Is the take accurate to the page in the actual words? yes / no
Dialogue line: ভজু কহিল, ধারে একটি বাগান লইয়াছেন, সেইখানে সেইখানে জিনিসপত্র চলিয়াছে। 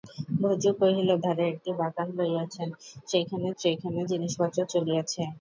yes